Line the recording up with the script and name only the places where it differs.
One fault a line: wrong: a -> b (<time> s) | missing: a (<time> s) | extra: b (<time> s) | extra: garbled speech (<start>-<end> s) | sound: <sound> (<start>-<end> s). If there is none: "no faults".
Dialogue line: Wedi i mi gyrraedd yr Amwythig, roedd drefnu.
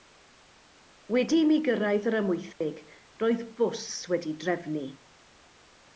sound: dropout (2.5-2.6 s)
extra: bws wedi'i (3.6 s)